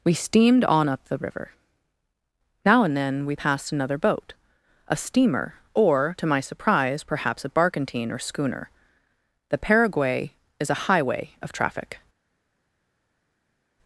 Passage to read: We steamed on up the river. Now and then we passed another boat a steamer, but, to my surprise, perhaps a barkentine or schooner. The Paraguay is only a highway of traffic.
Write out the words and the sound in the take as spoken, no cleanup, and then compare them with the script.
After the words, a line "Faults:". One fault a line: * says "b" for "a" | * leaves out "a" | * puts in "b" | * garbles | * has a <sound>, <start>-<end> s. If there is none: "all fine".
We steamed on up the river. Now and then we passed another boat a steamer, or, to my surprise, perhaps a barkentine or schooner. The Paraguay is a highway of traffic.
Faults:
* says "or" for "but"
* leaves out "only"